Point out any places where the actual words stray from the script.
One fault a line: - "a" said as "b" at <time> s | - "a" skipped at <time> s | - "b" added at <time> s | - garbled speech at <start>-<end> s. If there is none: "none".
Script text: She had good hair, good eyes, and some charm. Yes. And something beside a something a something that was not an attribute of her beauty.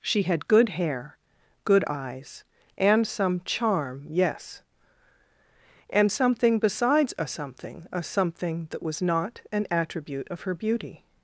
- "beside" said as "besides" at 6.6 s